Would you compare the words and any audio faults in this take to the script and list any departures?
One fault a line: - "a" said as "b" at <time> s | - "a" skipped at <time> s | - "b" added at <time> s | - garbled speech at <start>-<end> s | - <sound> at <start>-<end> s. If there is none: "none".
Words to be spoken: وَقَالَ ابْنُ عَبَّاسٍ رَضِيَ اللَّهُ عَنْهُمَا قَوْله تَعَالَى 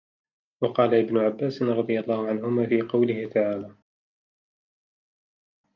- "فِي" added at 2.6 s